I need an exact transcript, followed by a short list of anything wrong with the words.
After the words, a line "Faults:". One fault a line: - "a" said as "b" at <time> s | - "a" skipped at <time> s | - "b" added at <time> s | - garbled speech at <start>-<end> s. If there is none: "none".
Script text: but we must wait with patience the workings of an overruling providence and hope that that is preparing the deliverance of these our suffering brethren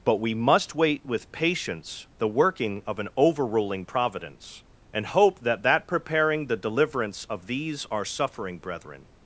but we must wait with patience the working of an overruling providence and hope that that preparing the deliverance of these our suffering brethren
Faults:
- "workings" said as "working" at 2.3 s
- "is" skipped at 5.9 s